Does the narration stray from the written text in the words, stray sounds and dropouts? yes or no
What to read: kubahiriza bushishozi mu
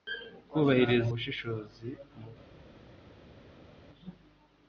no